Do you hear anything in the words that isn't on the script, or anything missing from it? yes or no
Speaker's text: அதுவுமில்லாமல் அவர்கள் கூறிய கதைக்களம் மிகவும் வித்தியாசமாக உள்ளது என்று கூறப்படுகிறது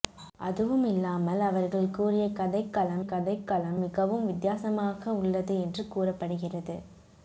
yes